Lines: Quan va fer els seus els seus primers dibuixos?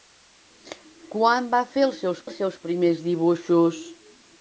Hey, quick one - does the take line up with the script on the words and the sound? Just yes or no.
yes